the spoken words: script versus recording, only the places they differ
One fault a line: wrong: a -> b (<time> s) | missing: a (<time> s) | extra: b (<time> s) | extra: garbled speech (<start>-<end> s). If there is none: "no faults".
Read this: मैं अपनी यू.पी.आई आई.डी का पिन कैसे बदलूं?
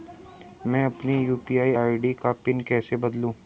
no faults